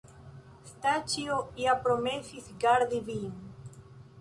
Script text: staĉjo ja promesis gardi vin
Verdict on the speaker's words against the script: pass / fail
pass